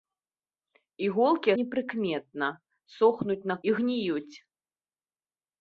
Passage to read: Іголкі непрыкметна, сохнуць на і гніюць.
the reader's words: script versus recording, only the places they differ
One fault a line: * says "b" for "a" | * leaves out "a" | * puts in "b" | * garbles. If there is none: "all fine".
all fine